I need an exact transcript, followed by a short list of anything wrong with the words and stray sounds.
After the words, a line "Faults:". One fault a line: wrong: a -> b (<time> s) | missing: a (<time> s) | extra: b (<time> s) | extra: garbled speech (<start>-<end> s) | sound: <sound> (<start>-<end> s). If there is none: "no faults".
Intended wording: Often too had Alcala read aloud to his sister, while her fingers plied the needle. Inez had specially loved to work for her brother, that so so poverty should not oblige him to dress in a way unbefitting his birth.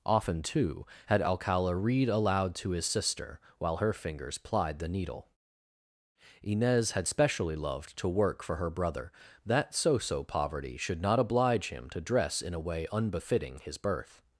Often too had Alcala read aloud to his sister, while her fingers plied the needle. Inez had specially loved to work for her brother, that so so poverty should not oblige him to dress in a way unbefitting his birth.
Faults:
no faults